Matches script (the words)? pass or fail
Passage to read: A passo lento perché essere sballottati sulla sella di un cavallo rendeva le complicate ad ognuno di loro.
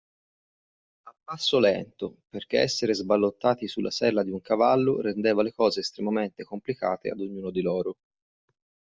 fail